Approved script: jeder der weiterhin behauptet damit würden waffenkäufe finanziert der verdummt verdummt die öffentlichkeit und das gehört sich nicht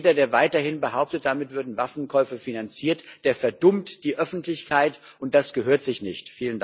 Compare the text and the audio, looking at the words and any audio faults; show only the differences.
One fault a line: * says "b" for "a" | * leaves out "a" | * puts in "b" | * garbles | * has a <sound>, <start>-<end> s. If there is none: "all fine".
* leaves out "verdummt"